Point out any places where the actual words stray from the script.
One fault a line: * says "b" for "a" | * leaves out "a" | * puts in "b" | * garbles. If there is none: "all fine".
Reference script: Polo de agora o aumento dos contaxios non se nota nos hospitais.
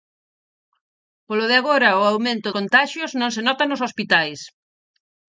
* leaves out "dos"